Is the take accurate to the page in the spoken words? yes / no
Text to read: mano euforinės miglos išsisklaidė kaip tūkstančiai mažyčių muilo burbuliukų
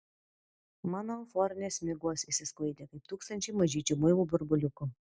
yes